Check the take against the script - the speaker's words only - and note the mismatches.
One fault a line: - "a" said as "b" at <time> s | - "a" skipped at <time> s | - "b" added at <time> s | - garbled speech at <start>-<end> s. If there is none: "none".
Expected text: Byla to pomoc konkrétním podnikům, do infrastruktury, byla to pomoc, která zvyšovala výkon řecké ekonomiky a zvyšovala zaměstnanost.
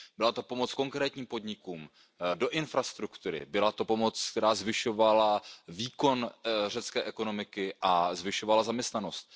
none